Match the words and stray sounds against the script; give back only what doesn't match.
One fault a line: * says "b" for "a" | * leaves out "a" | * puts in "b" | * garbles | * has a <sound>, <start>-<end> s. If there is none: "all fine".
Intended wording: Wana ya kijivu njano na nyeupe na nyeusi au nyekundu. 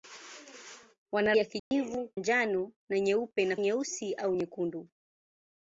* has a dropout, 1.6-1.7 s